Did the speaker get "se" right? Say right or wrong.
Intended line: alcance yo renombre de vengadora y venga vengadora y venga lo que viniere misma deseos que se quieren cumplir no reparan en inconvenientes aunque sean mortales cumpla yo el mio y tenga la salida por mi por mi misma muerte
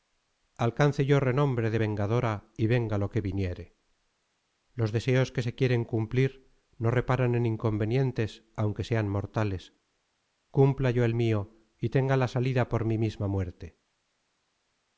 right